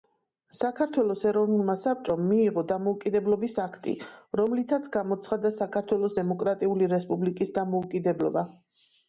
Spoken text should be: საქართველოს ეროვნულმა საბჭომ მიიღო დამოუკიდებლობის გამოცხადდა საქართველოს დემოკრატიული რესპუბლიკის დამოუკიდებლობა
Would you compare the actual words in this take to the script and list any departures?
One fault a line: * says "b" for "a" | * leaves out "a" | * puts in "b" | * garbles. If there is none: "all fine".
* puts in "აქტი რომლითაც"